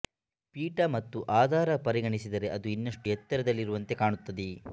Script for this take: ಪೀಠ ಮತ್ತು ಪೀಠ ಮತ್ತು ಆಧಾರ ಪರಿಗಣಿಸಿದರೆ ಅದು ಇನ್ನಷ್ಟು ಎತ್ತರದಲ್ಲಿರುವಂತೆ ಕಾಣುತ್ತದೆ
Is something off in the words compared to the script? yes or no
yes